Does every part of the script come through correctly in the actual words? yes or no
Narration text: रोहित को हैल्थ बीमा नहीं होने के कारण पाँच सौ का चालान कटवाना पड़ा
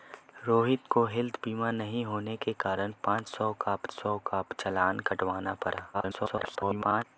no